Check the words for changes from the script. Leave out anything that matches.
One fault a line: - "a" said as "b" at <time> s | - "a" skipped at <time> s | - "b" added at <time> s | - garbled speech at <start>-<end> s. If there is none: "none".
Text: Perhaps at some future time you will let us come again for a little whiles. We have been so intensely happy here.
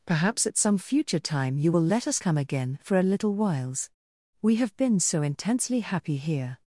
none